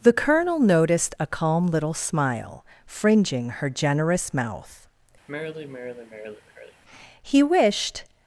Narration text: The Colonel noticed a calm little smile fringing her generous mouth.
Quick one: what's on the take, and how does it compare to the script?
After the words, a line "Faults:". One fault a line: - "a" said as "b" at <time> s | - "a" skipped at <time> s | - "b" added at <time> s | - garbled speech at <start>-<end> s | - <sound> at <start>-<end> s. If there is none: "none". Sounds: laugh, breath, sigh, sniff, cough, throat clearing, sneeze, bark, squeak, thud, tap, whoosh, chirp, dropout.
The Colonel noticed a calm little smile fringing her generous mouth. He wished
Faults:
- sigh at 5.3-6.8 s
- "He wished" added at 7.2 s